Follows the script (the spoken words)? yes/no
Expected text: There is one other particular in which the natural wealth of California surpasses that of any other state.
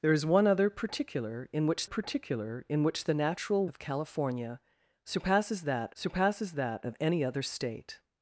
no